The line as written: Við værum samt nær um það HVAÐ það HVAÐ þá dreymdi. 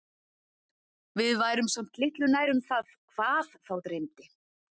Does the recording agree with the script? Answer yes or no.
no